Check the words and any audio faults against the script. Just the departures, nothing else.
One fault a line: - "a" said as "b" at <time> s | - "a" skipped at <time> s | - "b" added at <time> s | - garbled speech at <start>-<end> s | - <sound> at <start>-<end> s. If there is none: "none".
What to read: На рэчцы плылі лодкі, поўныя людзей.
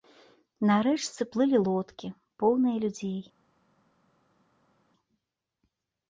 none